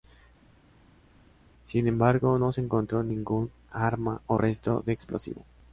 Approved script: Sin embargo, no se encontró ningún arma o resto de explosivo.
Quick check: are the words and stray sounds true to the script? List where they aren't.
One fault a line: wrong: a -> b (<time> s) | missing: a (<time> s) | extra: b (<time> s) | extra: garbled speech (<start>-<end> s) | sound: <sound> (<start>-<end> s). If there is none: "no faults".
no faults